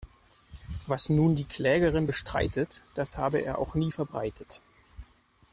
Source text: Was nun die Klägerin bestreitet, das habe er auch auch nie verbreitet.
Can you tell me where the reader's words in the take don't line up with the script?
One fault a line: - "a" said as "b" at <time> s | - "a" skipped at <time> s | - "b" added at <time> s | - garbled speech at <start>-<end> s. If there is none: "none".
- "auch" skipped at 3.7 s